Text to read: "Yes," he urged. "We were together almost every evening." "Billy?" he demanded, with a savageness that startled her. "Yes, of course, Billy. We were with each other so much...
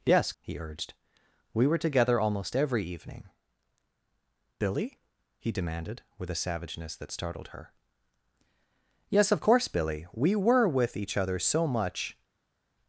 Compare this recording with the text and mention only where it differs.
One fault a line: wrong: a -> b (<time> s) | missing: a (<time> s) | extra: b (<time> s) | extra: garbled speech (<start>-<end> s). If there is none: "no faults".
no faults